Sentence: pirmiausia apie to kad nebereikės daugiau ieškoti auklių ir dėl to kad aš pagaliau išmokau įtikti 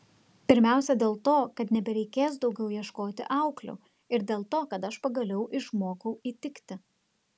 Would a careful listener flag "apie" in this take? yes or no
yes